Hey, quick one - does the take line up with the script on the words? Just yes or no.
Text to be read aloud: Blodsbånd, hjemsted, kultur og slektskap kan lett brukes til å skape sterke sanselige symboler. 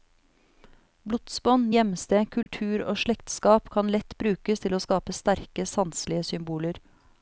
yes